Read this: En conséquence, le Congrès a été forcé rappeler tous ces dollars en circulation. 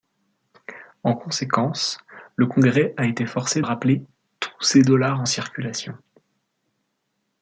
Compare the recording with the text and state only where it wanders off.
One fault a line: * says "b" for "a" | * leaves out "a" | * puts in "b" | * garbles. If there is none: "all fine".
all fine